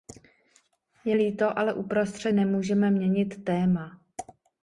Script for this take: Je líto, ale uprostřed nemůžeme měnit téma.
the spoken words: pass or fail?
pass